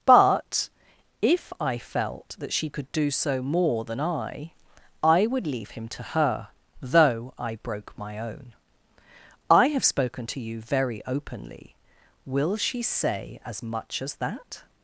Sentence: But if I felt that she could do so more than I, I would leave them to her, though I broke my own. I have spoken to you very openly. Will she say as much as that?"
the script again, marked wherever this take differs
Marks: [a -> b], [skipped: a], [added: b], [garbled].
But if I felt that she could do so more than I, I would leave [them -> him] to her, though I broke my own. I have spoken to you very openly. Will she say as much as that?"